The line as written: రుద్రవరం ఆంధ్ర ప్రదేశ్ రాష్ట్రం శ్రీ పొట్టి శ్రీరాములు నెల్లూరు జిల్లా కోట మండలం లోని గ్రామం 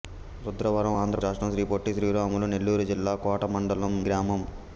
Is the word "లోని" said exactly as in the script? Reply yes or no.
no